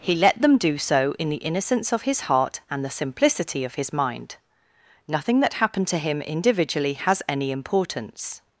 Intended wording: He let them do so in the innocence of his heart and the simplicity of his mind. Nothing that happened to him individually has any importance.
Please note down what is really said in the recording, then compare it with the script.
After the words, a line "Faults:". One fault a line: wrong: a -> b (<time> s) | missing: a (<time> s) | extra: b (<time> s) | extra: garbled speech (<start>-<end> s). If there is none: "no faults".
He let them do so in the innocence of his heart and the simplicity of his mind. Nothing that happened to him individually has any importance.
Faults:
no faults